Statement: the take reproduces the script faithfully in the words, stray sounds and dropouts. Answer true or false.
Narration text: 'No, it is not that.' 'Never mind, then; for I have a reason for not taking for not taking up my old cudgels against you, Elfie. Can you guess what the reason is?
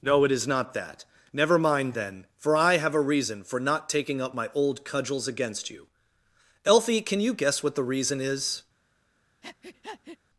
false